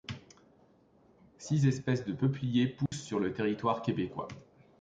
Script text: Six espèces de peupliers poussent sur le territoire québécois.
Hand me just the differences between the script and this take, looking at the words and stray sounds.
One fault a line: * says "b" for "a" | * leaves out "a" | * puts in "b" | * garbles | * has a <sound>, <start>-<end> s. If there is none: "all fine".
* has a dropout, 2.9-2.9 s